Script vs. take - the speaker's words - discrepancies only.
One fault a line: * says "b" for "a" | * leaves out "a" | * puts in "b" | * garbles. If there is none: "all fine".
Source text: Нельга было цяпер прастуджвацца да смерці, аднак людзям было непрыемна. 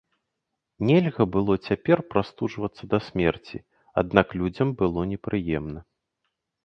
all fine